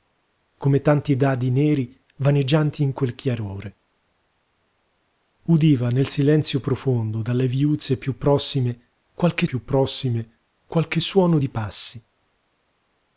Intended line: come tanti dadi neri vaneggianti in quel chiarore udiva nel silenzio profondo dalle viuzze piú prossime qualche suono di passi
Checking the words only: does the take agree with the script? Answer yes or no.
no